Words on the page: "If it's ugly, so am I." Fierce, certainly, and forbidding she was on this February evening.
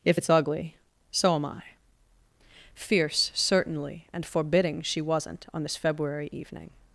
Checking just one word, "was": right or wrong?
wrong